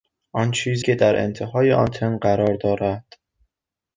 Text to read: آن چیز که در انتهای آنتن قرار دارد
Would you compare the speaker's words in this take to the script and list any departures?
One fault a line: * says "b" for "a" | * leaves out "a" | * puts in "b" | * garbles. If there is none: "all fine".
all fine